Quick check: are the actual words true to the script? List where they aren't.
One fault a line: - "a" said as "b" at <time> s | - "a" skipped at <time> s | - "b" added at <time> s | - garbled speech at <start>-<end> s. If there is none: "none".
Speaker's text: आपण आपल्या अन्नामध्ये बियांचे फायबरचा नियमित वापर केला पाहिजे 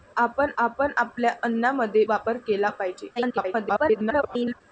- "आपण" added at 0.6 s
- "बियांचे फायबरचा नियमित" skipped at 2.0 s
- garbled speech at 3.2-4.6 s